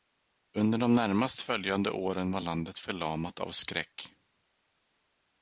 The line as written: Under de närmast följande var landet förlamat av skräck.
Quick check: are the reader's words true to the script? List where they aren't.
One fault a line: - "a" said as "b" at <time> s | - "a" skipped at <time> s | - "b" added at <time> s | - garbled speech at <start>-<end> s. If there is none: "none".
- "åren" added at 1.9 s